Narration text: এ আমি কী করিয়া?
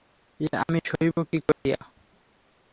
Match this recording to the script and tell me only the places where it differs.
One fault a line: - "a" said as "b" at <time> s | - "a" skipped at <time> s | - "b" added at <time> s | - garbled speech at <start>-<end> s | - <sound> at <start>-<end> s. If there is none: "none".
- "সহিব" added at 0.9 s
- dropout at 1.5-1.6 s